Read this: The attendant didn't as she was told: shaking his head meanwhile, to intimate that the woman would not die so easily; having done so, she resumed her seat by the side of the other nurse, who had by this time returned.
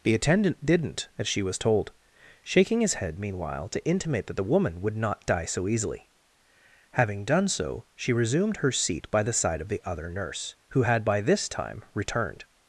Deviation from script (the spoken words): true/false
false